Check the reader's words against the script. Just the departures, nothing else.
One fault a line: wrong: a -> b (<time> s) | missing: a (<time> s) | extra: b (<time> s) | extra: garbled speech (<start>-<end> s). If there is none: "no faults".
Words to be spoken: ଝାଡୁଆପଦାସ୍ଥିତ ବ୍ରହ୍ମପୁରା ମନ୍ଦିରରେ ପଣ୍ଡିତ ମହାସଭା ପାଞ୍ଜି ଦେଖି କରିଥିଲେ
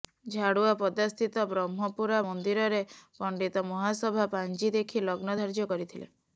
extra: ଲଗ୍ନ ଧାର୍ଯ୍ୟ (5.1 s)